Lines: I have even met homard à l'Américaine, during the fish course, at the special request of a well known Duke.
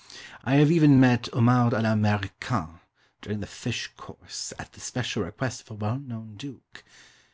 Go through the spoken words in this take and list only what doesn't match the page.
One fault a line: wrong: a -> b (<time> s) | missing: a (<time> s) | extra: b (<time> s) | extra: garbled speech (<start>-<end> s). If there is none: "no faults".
no faults